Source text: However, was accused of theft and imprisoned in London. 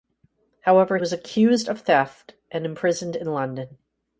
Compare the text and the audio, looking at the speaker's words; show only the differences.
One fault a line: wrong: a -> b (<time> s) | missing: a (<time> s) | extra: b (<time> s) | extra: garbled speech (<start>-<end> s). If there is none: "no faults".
no faults